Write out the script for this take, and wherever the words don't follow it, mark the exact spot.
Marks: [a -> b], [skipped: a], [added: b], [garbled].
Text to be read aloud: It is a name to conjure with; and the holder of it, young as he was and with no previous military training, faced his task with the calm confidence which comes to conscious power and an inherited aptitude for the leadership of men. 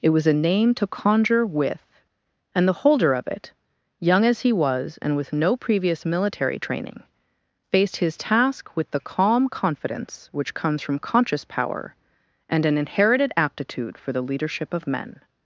It [is -> was] a name to conjure with; and the holder of it, young as he was and with no previous military training, faced his task with the calm confidence which comes [to -> from] conscious power and an inherited aptitude for the leadership of men.